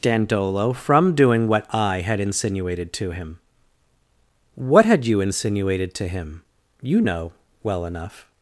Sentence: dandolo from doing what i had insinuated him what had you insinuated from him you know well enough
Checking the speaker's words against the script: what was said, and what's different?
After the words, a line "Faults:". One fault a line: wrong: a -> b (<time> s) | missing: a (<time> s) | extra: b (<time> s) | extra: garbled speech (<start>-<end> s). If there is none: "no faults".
dandolo from doing what i had insinuated to him what had you insinuated to him you know well enough
Faults:
extra: to (2.9 s)
wrong: from -> to (6.0 s)